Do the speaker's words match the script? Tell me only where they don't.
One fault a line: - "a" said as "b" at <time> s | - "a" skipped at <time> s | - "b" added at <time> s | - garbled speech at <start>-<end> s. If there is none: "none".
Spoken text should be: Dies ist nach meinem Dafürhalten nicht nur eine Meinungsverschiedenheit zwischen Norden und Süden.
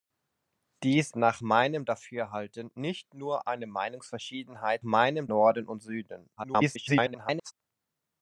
- "ist" skipped at 1.1 s
- "zwischen" said as "meinem" at 4.8 s
- garbled speech at 6.4-7.5 s